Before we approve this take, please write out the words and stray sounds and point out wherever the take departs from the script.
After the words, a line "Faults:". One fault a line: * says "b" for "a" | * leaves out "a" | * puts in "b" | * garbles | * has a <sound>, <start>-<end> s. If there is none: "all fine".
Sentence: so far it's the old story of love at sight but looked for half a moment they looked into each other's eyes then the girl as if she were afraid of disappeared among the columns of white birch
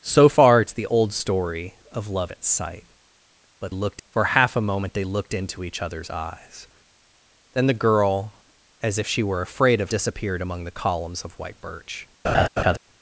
so far it's the old story of love at sight but looked for half a moment they looked into each other's eyes then the girl as if she were afraid of disappeared among the columns of white birch
Faults:
* has a laugh, 12.2-12.8 s